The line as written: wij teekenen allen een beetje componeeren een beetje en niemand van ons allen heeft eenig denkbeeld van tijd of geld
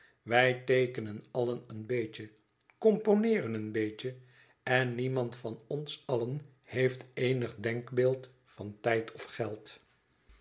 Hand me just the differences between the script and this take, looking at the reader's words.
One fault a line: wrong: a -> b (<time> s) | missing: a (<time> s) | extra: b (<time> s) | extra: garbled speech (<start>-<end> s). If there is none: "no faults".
no faults